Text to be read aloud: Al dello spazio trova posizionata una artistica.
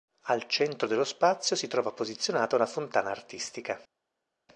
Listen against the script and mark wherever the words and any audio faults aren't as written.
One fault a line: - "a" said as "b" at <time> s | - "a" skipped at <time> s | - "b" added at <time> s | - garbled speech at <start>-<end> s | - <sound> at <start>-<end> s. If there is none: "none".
- "centro" added at 0.5 s
- "si" added at 1.6 s
- "fontana" added at 2.7 s